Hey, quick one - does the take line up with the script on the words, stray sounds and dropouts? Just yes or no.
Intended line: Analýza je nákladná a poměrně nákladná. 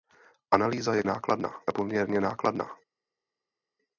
yes